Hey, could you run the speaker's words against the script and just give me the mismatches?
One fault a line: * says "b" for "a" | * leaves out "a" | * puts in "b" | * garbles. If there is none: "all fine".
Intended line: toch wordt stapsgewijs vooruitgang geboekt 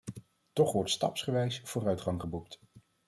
all fine